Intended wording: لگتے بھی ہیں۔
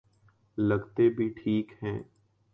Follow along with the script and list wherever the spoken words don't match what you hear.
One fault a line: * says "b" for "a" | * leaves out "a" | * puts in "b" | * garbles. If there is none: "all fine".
* puts in "ٹھیک"